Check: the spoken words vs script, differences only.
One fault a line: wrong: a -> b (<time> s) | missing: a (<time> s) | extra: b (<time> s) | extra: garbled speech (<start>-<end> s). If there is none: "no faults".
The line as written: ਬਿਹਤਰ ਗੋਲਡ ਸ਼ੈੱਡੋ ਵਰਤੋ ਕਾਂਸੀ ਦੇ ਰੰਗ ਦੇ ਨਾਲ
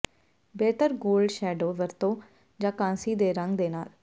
extra: ਜਾਂ (2.6 s)